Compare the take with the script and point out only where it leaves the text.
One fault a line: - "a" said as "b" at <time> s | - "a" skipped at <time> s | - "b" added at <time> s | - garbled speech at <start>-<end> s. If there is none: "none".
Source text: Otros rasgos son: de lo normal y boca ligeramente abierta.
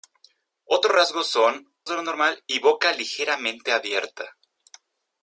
none